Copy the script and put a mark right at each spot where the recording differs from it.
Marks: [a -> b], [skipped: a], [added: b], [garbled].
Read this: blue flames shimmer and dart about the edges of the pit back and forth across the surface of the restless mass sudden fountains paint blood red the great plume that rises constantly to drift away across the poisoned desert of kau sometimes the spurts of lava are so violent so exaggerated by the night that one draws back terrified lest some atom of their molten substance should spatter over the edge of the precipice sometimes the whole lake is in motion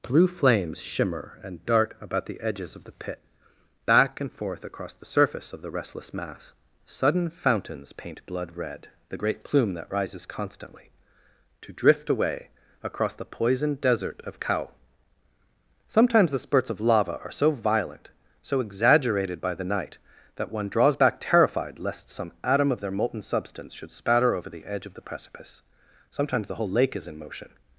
blue flames shimmer and dart about the edges of the pit back and forth across the surface of the restless mass sudden fountains paint blood red the great plume that rises constantly to drift away across the poisoned desert of kau sometimes the spurts of lava are so violent so exaggerated by the night that one draws back terrified lest some atom of their molten substance should spatter over the edge of the precipice sometimes the whole lake is in motion